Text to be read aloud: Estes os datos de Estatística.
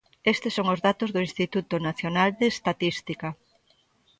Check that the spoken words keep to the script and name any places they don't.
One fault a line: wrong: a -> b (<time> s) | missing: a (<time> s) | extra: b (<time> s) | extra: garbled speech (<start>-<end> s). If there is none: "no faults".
extra: son (0.6 s)
extra: do Instituto Nacional (1.1 s)